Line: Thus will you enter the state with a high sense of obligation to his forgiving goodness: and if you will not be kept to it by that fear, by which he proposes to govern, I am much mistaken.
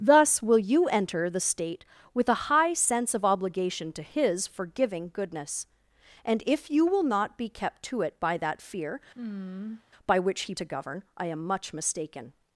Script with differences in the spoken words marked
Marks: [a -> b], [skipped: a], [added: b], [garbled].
Thus will you enter the state with a high sense of obligation to his forgiving goodness: and if you will not be kept to it by that fear, by which he [skipped: proposes] to govern, I am much mistaken.